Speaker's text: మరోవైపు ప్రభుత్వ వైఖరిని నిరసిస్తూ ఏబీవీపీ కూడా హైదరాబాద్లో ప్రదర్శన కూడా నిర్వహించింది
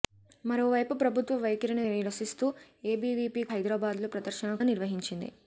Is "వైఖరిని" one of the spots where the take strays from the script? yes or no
no